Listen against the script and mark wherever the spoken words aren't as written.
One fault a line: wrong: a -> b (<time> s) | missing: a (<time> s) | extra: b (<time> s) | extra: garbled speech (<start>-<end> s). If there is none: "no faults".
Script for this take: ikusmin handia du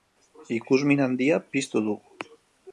extra: piztu (1.5 s)